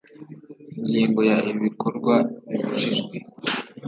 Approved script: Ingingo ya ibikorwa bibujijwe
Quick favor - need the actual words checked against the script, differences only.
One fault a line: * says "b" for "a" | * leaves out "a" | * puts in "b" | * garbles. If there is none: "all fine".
all fine